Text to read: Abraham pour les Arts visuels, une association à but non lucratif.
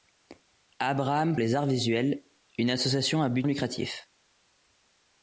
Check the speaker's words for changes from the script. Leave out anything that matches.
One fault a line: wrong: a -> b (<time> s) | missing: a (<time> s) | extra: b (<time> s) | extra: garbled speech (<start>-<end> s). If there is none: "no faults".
missing: pour (1.4 s)
missing: non (3.5 s)